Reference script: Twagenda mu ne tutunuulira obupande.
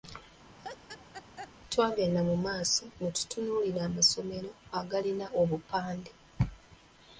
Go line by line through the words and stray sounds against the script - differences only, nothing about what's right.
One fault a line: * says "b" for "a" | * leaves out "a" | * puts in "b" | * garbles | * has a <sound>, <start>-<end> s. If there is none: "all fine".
* has a laugh, 0.6-1.5 s
* puts in "maaso"
* puts in "amasomero agalina"